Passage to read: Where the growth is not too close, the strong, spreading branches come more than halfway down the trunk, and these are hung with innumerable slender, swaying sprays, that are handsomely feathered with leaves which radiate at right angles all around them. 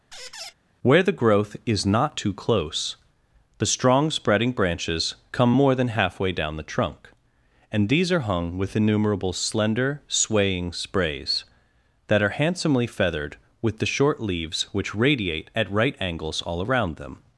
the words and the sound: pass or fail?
fail